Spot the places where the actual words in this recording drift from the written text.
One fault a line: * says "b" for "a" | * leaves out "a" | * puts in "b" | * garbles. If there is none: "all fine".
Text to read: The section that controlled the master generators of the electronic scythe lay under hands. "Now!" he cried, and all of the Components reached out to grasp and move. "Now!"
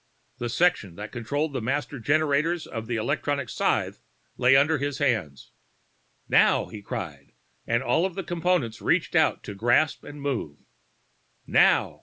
* puts in "his"